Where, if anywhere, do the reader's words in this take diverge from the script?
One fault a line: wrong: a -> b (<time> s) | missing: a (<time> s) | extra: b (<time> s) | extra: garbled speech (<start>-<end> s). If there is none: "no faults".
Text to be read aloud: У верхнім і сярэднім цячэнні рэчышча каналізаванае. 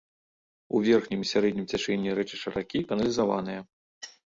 extra: ракі (2.6 s)